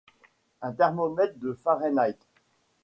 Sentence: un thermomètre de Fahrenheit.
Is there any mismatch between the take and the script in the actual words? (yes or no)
no